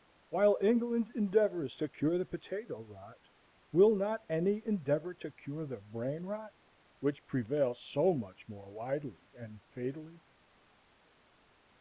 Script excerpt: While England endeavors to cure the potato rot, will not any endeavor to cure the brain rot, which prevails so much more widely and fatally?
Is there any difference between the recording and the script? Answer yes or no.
no